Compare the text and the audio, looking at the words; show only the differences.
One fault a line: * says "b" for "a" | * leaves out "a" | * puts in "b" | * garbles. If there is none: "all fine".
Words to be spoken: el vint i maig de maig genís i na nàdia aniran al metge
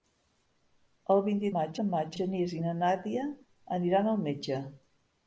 all fine